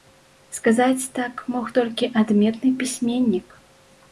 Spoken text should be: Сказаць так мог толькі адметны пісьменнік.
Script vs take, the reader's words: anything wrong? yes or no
no